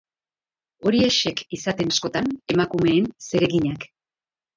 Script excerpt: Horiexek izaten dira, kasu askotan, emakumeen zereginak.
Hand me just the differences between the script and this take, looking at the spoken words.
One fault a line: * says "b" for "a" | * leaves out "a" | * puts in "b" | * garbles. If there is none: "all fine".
* leaves out "dira kasu"